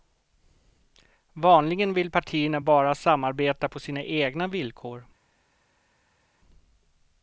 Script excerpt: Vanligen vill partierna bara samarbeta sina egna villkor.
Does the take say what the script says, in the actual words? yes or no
no